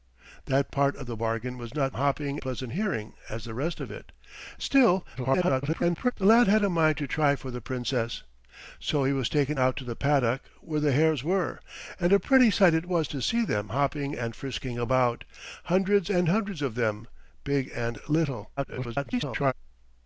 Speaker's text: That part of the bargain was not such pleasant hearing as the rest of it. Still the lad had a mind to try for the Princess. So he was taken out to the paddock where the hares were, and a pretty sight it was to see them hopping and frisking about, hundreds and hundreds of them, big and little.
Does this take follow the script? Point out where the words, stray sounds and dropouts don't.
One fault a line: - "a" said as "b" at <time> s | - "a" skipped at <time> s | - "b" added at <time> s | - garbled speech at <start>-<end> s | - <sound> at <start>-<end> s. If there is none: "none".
- "such" said as "hopping" at 1.9 s
- garbled speech at 5.2-6.1 s
- garbled speech at 18.6-19.5 s